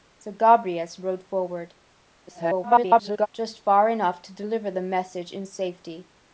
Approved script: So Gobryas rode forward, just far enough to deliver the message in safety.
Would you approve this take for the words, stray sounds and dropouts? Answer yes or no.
no